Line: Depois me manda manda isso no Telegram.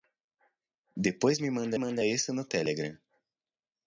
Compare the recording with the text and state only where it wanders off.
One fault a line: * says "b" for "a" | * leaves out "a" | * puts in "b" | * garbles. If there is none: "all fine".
all fine